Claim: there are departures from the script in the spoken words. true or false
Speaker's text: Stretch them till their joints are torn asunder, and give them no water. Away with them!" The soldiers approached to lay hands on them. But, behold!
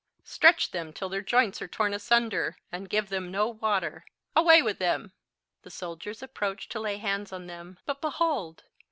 false